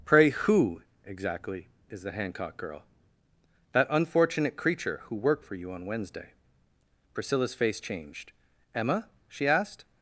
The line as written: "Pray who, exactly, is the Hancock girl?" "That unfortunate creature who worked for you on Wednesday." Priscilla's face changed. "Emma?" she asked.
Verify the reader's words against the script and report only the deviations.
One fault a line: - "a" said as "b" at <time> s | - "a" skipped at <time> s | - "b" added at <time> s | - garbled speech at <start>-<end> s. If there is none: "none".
none